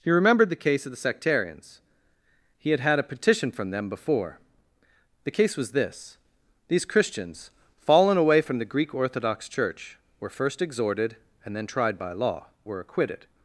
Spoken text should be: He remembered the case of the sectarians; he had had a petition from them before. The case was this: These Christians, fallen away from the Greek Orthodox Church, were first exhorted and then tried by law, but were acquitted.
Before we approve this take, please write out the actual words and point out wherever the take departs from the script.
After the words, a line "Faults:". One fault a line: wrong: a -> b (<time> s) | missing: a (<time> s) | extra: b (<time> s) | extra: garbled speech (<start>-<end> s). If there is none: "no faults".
He remembered the case of the sectarians; he had had a petition from them before. The case was this: These Christians, fallen away from the Greek Orthodox Church, were first exhorted and then tried by law, were acquitted.
Faults:
missing: but (12.5 s)